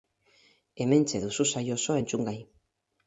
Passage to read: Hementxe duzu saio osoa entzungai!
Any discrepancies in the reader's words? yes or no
no